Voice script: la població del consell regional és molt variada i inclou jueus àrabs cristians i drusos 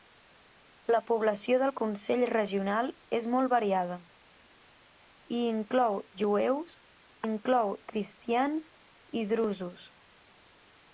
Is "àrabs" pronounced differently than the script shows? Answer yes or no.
yes